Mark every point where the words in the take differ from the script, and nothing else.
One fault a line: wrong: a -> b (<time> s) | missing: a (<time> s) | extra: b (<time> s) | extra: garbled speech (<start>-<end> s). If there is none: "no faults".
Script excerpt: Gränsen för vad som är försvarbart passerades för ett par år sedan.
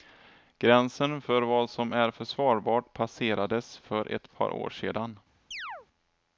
no faults